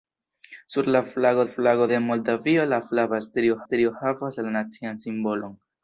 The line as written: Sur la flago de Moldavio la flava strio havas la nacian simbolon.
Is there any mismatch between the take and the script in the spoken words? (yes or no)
yes